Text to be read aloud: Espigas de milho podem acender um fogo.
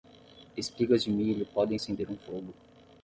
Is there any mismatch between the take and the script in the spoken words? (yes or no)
no